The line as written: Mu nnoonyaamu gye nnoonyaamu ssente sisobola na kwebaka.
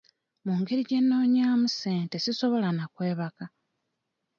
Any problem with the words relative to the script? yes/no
yes